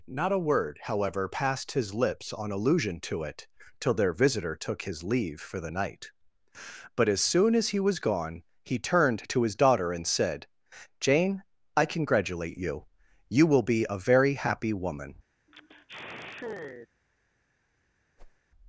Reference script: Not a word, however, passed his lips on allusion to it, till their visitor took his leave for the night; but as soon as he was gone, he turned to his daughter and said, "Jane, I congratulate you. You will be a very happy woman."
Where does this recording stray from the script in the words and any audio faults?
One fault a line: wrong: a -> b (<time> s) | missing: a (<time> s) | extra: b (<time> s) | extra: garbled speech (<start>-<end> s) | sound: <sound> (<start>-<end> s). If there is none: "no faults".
sound: sigh (15.5-16.9 s)
sound: whoosh (18.2-18.4 s)